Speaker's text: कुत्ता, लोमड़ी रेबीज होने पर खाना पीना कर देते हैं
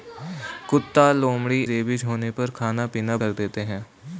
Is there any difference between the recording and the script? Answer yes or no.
no